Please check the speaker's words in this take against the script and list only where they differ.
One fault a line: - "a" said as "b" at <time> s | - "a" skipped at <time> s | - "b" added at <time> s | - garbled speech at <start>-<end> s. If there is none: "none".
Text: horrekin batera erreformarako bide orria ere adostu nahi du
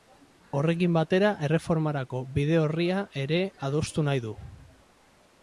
none